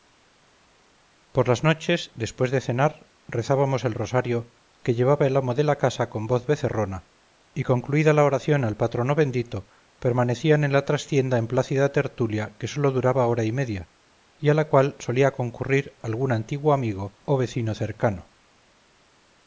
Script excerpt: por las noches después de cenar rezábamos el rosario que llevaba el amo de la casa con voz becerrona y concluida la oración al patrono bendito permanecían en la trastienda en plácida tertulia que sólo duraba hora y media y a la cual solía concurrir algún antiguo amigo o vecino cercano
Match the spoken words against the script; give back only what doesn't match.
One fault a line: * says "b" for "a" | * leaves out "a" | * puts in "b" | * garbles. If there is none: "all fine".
all fine